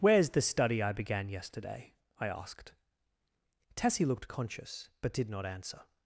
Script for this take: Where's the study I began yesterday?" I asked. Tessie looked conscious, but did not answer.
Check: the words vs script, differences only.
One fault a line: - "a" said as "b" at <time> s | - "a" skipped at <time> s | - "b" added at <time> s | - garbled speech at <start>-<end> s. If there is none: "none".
none